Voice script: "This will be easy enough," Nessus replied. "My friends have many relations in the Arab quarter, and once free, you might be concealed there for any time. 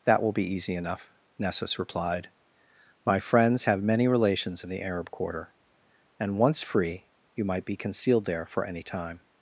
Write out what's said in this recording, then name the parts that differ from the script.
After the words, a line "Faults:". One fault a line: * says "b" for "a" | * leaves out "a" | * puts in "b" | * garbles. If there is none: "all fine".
"That will be easy enough," Nessus replied. "My friends have many relations in the Arab quarter, and once free, you might be concealed there for any time.
Faults:
* says "That" for "This"